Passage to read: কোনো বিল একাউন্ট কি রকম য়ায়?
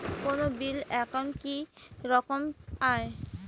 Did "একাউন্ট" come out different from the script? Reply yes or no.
no